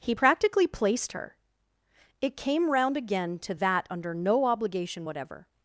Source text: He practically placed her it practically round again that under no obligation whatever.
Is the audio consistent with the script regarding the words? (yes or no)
no